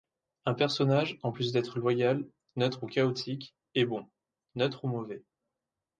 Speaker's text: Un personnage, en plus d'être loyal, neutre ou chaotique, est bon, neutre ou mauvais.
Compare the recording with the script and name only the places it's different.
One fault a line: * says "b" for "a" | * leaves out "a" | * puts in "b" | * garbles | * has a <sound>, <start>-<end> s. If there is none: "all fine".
all fine